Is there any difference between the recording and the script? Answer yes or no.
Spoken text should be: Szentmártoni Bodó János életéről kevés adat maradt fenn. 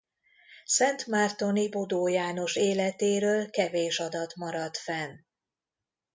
no